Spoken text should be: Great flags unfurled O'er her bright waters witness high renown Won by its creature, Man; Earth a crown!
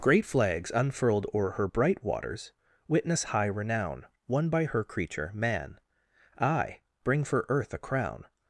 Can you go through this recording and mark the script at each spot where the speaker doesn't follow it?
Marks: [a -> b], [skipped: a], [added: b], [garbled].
Great flags unfurled O'er her bright waters witness high renown Won by [its -> her] creature, Man; [added: aye bring for] Earth a crown!